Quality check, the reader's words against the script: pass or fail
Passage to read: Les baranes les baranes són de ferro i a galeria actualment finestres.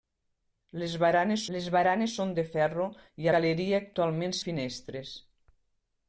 pass